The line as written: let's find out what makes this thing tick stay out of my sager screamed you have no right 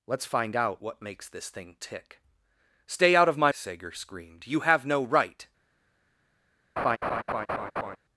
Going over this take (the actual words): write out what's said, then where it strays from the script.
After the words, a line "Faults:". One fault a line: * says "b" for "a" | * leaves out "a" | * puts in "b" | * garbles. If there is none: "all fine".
let's find out what makes this thing tick stay out of my sager screamed you have no right
Faults:
all fine